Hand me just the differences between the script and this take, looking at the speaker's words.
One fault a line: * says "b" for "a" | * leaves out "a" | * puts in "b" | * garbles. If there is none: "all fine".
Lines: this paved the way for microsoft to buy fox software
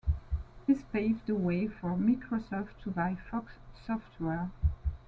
all fine